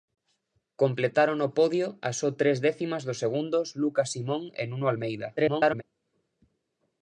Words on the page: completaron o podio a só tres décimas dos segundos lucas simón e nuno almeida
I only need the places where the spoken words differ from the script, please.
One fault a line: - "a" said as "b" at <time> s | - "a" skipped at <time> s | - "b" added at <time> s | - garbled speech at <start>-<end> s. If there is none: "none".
- garbled speech at 5.4-5.8 s